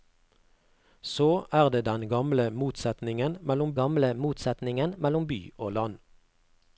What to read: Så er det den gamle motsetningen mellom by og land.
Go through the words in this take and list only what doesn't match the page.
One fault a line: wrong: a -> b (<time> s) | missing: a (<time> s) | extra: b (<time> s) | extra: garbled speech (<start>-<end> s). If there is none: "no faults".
extra: gamle motsetningen mellom (3.8 s)